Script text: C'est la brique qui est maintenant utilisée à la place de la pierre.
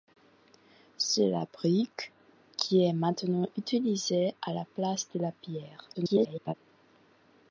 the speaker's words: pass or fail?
fail